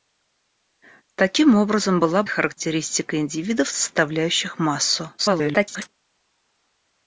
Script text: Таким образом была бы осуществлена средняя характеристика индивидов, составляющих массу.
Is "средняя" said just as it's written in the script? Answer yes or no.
no